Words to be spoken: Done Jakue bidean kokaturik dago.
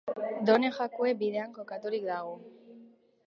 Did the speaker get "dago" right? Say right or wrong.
right